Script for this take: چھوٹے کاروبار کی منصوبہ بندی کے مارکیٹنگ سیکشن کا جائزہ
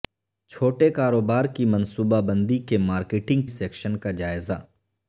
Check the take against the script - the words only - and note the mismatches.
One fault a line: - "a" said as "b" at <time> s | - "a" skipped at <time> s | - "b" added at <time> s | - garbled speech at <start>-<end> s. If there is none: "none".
none